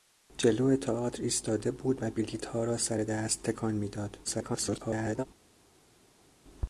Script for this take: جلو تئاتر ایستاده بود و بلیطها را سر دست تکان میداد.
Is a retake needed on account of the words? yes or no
yes